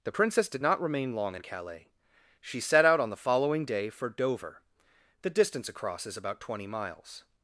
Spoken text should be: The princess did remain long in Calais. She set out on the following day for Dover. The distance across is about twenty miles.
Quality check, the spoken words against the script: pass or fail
fail